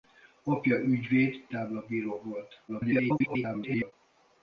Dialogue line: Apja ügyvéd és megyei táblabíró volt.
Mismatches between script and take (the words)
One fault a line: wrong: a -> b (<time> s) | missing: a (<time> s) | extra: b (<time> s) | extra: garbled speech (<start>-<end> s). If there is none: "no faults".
missing: és megyei (1.5 s)
extra: garbled speech (2.7-3.9 s)